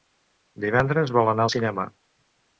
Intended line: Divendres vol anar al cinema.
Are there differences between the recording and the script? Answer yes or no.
no